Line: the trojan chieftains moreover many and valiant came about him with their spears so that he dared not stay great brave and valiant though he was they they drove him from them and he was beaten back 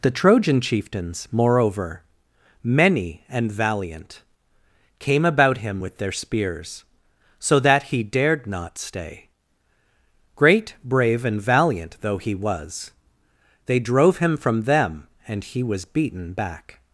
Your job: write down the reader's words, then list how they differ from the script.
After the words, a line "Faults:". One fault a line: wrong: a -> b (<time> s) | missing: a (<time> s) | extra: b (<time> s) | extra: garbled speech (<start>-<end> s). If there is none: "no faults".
the trojan chieftains moreover many and valiant came about him with their spears so that he dared not stay great brave and valiant though he was they drove him from them and he was beaten back
Faults:
missing: they (13.8 s)